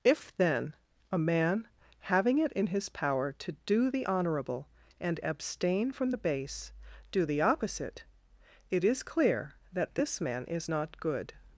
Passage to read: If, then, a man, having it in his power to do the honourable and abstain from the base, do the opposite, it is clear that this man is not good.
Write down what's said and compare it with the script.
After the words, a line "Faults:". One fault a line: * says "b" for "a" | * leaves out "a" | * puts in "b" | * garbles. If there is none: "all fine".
If, then, a man, having it in his power to do the honourable and abstain from the base, do the opposite, it is clear that this man is not good.
Faults:
all fine